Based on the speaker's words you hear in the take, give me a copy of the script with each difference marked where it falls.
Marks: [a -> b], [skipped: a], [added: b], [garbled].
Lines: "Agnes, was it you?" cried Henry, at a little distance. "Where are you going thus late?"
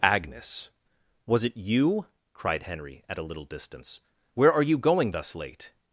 "Agnes, was it you?" cried Henry, at a little distance. "Where are you going thus late?"